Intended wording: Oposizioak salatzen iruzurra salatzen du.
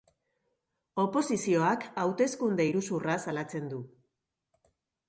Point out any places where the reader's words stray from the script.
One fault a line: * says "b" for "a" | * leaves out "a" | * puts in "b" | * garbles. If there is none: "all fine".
* says "hauteskunde" for "salatzen"